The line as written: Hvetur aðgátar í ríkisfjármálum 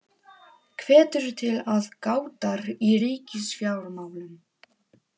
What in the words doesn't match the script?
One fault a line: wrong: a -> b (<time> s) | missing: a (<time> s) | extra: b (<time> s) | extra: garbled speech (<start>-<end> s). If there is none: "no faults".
extra: til (1.4 s)